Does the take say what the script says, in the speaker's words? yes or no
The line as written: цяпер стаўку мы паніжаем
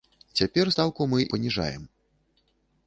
yes